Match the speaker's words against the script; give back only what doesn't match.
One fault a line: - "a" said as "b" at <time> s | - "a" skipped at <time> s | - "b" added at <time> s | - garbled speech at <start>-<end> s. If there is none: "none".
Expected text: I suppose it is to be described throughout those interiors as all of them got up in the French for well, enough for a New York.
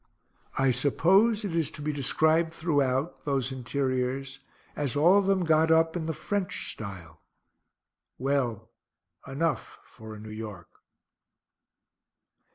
- "for" said as "style" at 6.7 s